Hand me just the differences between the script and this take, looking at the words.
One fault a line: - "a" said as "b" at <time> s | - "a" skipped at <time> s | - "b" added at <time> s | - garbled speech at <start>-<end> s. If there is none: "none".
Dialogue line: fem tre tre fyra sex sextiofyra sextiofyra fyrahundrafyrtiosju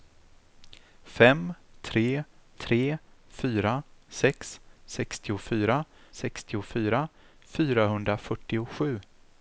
none